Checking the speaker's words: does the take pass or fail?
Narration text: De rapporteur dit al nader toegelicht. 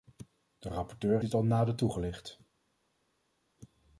pass